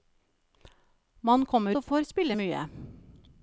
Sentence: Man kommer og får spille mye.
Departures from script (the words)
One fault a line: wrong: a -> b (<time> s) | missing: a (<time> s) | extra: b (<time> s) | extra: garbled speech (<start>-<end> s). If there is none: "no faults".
no faults